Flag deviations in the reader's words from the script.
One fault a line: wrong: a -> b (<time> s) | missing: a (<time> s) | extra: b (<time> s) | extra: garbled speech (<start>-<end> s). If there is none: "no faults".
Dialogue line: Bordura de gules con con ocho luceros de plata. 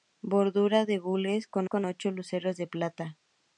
no faults